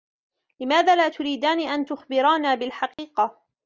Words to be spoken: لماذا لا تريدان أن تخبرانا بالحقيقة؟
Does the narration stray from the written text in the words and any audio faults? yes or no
yes